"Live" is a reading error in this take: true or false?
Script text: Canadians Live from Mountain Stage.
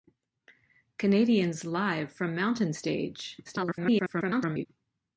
false